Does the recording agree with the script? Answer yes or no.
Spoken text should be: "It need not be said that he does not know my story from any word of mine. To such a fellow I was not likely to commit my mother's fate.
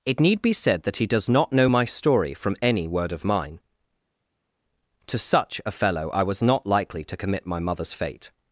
no